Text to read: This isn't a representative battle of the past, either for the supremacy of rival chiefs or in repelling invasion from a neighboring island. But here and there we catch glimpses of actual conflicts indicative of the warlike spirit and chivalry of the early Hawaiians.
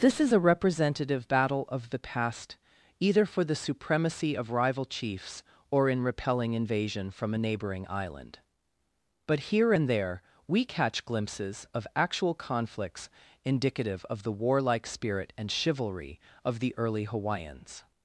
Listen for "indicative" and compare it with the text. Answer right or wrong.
right